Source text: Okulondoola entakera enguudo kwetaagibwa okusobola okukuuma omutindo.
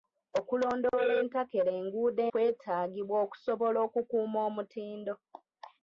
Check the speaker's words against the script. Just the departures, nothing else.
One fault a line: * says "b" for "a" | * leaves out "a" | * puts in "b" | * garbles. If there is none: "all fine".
all fine